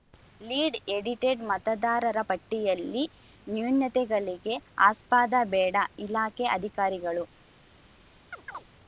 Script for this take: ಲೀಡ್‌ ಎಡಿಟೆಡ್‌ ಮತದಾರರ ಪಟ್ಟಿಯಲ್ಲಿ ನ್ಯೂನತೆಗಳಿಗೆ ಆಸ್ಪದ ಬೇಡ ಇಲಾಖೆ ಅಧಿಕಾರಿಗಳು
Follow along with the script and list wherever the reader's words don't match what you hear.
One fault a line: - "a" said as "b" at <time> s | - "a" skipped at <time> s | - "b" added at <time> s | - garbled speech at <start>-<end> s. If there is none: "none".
none